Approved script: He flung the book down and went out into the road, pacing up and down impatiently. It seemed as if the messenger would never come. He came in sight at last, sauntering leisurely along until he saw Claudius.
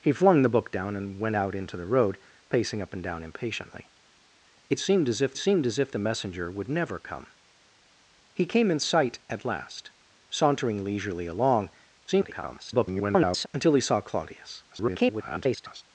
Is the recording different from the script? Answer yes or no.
yes